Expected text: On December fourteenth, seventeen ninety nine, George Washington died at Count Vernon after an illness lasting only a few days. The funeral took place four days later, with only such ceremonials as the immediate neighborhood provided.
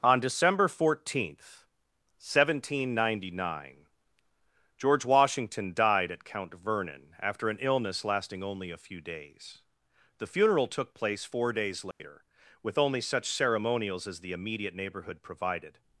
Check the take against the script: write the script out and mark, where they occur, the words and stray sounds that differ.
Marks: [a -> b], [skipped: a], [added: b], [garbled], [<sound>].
On December fourteenth, seventeen ninety nine, George Washington died at Count Vernon after an illness lasting only a few days. The funeral took place four days later, [dropout] with only such ceremonials as the immediate neighborhood provided.